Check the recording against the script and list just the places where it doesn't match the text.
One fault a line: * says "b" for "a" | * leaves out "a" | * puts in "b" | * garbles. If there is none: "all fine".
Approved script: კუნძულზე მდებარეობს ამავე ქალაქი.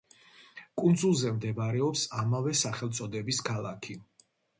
* puts in "სახელწოდების"